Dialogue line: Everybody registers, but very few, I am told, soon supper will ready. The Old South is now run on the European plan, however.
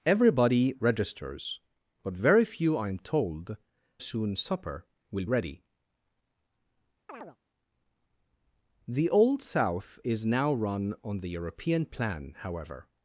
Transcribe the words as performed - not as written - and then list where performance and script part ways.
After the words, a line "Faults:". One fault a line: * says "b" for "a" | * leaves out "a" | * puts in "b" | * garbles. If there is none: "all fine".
Everybody registers, but very few, I am told, soon supper will ready. The Old South is now run on the European plan, however.
Faults:
all fine